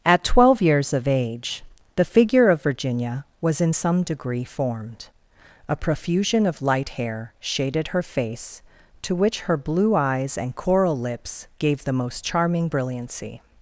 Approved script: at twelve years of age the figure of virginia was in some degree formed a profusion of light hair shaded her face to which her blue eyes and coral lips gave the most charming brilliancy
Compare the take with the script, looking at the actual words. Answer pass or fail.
pass